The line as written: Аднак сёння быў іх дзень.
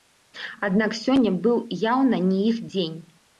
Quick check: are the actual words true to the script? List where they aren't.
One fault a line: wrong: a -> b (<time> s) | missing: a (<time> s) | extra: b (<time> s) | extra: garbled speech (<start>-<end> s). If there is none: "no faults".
extra: яўна не (1.9 s)